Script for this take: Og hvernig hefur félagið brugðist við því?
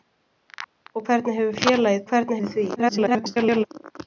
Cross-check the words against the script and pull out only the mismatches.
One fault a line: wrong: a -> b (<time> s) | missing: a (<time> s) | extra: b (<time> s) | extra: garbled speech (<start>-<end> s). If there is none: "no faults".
wrong: brugðist -> hvernig (2.1 s)
extra: garbled speech (2.8-3.7 s)